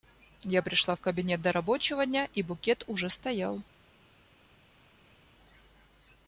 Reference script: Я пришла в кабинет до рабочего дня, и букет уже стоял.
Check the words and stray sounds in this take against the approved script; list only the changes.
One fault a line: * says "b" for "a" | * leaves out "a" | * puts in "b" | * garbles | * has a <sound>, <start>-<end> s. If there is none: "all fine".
all fine